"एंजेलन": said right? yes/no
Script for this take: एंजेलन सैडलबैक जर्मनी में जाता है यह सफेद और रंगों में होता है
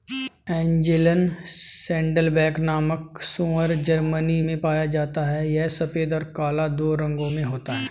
yes